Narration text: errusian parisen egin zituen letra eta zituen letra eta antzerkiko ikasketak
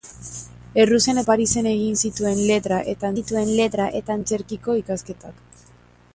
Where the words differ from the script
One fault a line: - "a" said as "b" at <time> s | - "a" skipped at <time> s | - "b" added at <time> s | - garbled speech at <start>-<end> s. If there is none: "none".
none